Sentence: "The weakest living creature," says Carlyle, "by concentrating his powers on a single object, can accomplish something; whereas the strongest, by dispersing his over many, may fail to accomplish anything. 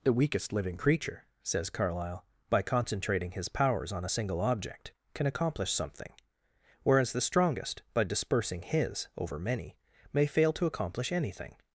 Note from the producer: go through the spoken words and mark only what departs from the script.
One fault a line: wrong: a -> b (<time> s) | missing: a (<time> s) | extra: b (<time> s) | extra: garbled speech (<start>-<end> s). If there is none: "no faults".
no faults